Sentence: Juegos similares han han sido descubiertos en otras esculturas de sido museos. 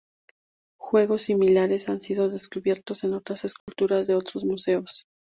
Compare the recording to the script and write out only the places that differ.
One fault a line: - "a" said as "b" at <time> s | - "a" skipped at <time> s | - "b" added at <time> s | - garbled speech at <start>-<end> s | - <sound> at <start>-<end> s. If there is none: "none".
- "han" skipped at 2.0 s
- dropout at 3.6-3.7 s
- "sido" said as "otros" at 4.1 s